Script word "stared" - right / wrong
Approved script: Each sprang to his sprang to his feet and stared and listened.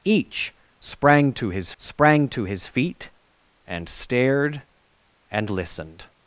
right